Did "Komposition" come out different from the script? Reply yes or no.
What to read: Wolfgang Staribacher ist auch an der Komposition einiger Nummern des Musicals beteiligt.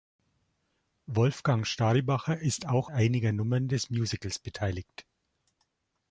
yes